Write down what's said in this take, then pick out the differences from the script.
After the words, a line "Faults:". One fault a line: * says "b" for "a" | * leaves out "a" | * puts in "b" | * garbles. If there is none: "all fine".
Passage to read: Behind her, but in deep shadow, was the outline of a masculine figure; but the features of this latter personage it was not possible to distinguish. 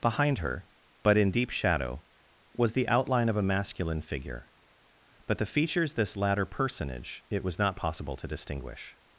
Behind her, but in deep shadow, was the outline of a masculine figure; but the features this latter personage it was not possible to distinguish.
Faults:
* leaves out "of"